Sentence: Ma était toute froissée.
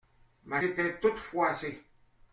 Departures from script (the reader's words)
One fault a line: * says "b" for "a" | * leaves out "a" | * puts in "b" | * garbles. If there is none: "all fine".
all fine